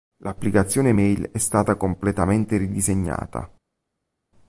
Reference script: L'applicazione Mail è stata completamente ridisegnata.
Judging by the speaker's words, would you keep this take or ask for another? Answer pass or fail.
pass